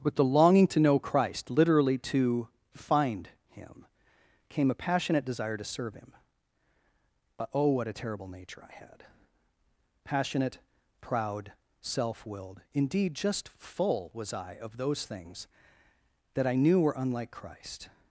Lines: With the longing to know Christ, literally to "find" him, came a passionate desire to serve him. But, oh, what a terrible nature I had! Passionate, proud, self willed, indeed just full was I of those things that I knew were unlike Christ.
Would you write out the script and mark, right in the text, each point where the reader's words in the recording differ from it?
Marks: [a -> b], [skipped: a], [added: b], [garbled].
With the longing to know Christ, literally to "find" him, came a passionate desire to serve him. But, oh, what a terrible nature I had! Passionate, proud, self willed, indeed just full was I of those things that I knew were unlike Christ.